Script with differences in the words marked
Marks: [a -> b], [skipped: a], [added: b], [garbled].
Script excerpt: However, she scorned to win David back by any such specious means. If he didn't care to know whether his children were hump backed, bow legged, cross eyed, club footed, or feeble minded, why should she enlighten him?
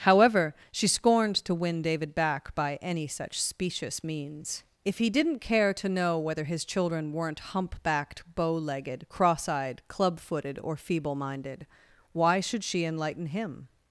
However, she scorned to win David back by any such specious means. If he didn't care to know whether his children [were -> weren't] hump backed, bow legged, cross eyed, club footed, or feeble minded, why should she enlighten him?